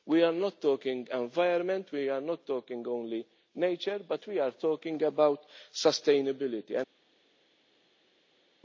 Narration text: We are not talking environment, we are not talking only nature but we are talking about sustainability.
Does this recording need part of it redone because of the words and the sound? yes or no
no